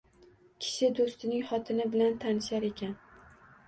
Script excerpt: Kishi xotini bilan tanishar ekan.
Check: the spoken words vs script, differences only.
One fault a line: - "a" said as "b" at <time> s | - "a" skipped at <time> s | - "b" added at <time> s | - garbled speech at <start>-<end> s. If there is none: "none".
- "do‘stining" added at 1.0 s